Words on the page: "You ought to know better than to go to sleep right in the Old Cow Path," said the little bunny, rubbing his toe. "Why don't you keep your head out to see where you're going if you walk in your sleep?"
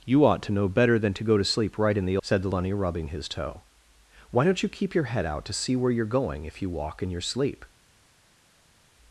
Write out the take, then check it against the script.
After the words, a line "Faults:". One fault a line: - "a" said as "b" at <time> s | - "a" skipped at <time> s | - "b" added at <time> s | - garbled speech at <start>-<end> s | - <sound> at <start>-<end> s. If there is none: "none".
"You ought to know better than to go to sleep right in the," Said the bunny, rubbing his toe. "Why don't you keep your head out to see where you're going if you walk in your sleep?"
Faults:
- "Old Cow Path" skipped at 2.2 s
- "little" skipped at 2.5 s